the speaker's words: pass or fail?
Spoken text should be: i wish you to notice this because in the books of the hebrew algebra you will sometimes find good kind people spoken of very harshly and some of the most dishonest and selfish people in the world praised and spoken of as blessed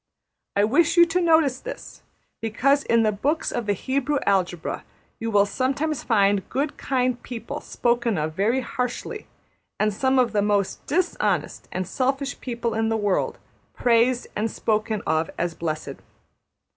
pass